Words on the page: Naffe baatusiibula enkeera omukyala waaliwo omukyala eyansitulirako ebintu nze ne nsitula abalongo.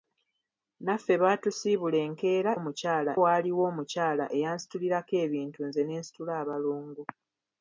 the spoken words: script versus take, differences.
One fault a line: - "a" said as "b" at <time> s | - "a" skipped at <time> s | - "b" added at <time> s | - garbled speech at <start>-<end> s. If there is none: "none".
none